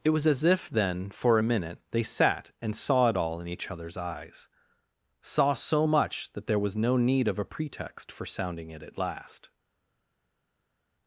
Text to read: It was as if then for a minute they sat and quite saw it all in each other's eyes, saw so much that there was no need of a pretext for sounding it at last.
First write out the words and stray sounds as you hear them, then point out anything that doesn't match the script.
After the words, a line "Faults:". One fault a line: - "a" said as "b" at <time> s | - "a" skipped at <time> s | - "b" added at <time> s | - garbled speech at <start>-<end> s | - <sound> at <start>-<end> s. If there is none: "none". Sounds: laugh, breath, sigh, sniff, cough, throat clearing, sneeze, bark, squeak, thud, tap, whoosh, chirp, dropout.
It was as if then for a minute they sat and saw it all in each other's eyes, saw so much that there was no need of a pretext for sounding it at last.
Faults:
- "quite" skipped at 2.7 s